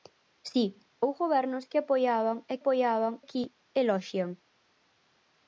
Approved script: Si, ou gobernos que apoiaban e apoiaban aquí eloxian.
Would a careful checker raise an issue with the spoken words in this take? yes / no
no